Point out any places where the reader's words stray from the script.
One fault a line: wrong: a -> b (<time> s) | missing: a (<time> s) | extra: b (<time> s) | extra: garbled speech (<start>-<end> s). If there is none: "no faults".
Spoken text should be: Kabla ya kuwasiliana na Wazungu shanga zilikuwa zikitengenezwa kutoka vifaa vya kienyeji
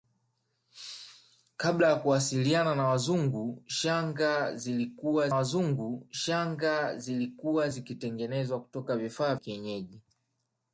extra: Wazungu shanga zilikuwa (5.3 s)
missing: vya (9.4 s)